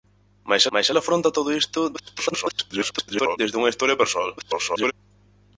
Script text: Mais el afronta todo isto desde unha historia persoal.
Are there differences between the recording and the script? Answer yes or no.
yes